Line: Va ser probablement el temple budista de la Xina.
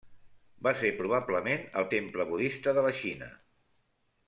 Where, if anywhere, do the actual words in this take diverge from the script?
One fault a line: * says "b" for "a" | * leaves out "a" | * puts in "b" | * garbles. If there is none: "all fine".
all fine